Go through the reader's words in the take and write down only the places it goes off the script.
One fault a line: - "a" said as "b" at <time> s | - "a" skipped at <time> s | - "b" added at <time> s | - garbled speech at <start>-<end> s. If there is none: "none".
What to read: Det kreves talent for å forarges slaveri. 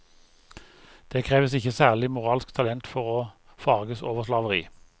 - "ikke særlig moralsk" added at 1.5 s
- "over" added at 4.0 s